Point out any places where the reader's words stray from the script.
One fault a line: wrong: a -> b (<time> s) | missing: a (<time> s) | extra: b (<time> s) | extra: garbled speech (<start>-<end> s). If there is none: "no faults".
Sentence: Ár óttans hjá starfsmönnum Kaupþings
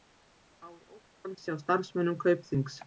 no faults